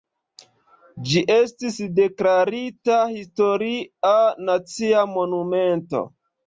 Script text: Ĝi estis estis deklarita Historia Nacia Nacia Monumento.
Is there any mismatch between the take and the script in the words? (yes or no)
yes